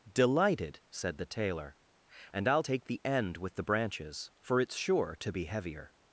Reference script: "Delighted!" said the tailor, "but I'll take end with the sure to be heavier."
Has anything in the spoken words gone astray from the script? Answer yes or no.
yes